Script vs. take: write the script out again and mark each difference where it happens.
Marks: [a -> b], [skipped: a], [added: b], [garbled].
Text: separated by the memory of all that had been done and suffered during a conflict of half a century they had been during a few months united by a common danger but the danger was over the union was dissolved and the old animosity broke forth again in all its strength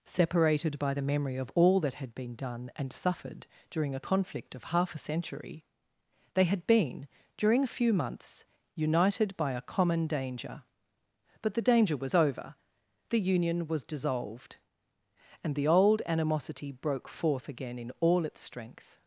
separated by the memory of all that had been done and suffered during a conflict of half a century they had been during a few months united by a common danger but the danger was over the union was dissolved and the old animosity broke forth again in all its strength